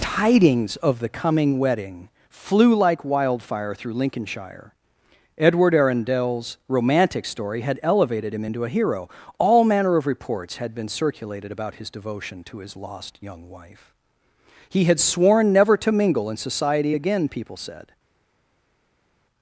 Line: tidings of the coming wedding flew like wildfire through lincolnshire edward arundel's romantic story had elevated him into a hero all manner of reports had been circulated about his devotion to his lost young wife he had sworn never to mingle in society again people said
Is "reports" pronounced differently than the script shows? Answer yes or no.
no